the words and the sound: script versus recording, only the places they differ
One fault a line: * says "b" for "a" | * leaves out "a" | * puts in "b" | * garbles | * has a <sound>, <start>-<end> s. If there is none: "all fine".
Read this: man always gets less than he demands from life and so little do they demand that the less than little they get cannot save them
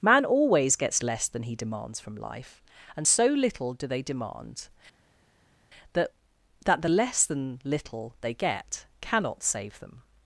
* puts in "that"